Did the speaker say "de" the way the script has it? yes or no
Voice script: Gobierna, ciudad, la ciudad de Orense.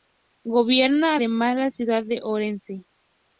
yes